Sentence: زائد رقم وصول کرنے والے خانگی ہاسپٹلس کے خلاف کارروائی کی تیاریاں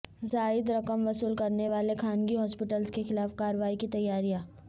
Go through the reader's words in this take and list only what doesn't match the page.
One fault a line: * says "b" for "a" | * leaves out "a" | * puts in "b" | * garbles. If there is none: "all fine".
all fine